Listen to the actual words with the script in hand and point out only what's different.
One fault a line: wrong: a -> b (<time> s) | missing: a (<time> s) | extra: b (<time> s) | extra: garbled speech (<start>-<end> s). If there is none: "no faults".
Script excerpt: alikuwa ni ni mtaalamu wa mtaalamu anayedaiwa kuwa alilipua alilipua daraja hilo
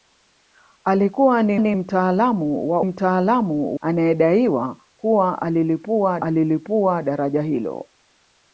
no faults